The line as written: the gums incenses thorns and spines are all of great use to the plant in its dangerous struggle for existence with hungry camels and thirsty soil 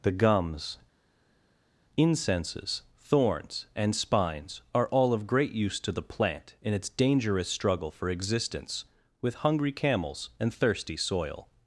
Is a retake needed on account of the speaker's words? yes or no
no